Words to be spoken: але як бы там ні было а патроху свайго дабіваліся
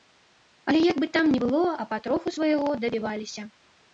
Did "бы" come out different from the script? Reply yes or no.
no